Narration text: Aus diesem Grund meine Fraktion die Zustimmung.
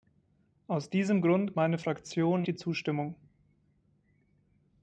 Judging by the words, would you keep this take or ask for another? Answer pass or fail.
pass